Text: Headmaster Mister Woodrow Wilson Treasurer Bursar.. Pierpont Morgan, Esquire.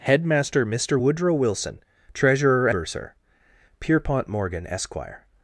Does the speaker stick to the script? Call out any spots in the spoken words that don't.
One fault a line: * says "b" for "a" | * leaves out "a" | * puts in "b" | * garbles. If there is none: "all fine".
all fine